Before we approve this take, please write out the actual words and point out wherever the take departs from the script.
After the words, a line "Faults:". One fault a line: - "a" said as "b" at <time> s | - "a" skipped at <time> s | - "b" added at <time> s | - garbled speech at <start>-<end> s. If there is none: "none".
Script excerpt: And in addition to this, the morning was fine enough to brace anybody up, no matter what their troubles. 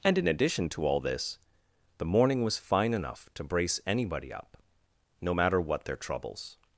And in addition to all this, the morning was fine enough to brace anybody up, no matter what their troubles.
Faults:
- "all" added at 0.8 s